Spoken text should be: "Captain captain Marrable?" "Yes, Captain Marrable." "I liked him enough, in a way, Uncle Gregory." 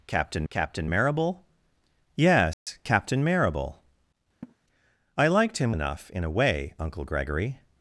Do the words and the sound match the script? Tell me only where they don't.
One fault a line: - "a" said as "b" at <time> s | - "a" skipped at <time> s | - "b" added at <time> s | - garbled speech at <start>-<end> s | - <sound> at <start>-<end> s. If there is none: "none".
- dropout at 2.5-2.7 s
- laugh at 4.4-4.6 s